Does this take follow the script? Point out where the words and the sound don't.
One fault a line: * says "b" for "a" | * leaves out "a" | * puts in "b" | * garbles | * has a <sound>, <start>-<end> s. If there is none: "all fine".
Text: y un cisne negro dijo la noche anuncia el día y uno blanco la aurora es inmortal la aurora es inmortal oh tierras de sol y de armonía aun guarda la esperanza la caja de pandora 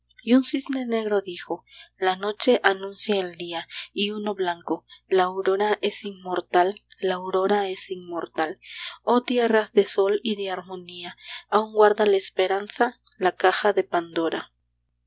all fine